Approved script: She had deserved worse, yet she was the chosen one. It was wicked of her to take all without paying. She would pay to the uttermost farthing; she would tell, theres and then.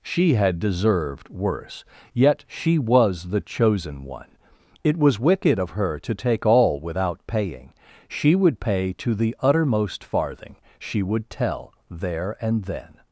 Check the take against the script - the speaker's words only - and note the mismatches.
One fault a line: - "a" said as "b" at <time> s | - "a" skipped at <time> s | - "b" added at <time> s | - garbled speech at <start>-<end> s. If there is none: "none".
- "theres" said as "there" at 11.9 s